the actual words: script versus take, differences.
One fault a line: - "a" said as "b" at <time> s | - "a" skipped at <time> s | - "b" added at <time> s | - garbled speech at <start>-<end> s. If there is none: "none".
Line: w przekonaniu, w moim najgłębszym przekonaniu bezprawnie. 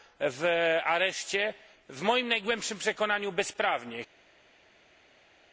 - "przekonaniu" said as "areszcie" at 0.8 s